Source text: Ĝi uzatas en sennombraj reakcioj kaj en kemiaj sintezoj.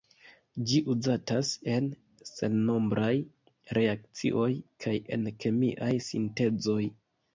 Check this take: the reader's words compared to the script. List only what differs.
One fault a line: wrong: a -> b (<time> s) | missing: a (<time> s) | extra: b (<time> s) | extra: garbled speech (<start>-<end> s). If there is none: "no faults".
no faults